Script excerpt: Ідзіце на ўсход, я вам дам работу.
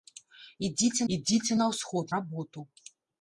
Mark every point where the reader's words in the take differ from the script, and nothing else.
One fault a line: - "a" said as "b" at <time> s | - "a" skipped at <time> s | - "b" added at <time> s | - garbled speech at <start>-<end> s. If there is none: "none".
- "ідзіце" added at 1.2 s
- "я вам дам" skipped at 2.1 s